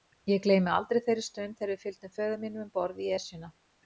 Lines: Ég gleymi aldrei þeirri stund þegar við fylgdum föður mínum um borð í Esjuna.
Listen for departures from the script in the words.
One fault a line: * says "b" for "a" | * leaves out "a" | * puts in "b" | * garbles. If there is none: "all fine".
all fine